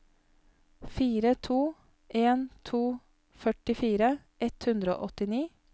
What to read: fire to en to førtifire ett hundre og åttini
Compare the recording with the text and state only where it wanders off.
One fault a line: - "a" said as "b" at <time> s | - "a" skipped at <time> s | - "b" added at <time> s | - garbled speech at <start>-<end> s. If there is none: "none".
none